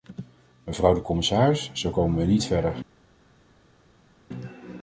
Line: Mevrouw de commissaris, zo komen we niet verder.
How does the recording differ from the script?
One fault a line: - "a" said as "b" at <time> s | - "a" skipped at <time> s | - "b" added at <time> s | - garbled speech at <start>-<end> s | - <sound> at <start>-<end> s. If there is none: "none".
none